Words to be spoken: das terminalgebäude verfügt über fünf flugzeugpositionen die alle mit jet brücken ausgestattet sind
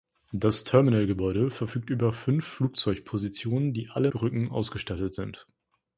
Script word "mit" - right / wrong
wrong